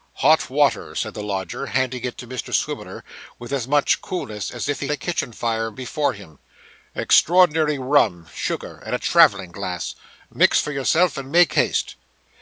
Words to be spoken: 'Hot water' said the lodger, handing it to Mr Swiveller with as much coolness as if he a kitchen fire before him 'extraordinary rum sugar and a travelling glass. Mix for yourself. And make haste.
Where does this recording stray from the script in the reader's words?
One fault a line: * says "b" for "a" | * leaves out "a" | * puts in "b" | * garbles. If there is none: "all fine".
all fine